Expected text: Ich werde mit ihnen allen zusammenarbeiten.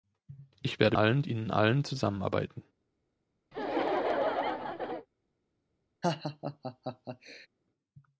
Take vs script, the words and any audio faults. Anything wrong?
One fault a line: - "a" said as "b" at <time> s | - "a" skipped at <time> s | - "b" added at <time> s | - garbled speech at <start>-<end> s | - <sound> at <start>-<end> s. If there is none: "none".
- "mit" said as "allen" at 0.9 s
- laugh at 3.5-5.1 s
- laugh at 6.0-7.5 s